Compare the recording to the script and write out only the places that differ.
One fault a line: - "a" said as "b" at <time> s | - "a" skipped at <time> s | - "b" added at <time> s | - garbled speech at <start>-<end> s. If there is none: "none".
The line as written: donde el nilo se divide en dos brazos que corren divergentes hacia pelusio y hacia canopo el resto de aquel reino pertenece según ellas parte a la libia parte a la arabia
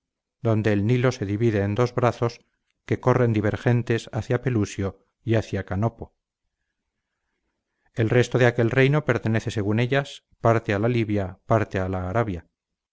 none